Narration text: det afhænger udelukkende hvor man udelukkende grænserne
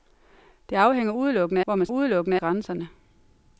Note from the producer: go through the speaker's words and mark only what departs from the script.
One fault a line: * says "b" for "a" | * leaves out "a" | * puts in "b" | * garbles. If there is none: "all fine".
all fine